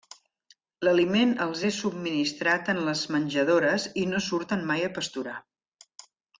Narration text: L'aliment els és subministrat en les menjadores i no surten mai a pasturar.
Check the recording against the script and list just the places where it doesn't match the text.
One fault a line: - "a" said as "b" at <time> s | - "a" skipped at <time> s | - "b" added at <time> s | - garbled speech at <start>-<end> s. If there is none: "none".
none